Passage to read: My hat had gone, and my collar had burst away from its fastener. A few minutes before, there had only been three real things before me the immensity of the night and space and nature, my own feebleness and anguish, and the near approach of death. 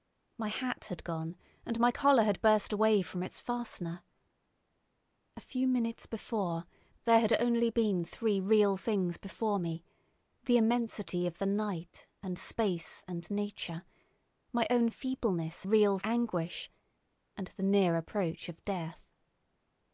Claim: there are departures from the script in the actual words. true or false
true